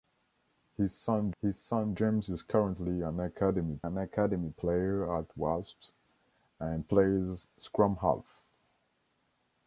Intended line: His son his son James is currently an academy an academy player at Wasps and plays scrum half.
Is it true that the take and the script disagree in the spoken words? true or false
false